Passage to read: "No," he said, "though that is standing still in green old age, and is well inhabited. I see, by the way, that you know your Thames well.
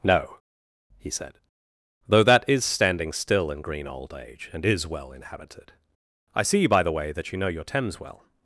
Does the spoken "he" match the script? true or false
true